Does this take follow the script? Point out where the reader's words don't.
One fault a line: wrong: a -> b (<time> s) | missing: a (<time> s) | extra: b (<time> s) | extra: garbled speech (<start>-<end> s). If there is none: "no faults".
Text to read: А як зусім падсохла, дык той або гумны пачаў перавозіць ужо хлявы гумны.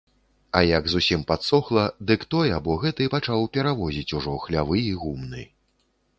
wrong: гумны -> гэты (2.9 s)
extra: і (4.9 s)